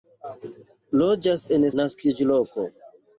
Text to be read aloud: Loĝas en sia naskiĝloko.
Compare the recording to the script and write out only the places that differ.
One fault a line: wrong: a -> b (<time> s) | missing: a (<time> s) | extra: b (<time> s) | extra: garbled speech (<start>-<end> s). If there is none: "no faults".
missing: sia (1.7 s)